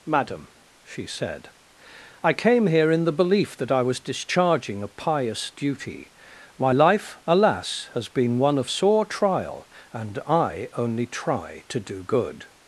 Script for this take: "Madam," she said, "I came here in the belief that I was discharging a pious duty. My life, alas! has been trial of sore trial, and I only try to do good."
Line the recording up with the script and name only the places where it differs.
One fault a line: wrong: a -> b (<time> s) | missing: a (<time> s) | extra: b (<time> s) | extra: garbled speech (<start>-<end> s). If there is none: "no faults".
wrong: trial -> one (8.4 s)